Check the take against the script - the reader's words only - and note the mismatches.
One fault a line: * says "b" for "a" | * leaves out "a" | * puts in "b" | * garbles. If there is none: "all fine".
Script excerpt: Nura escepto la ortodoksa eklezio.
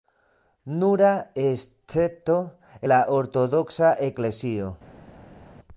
all fine